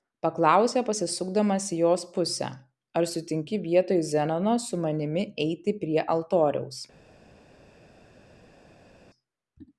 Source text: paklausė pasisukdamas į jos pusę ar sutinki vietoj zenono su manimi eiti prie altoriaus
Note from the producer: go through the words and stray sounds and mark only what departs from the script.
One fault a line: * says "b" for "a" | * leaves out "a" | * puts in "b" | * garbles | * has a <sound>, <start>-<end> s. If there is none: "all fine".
all fine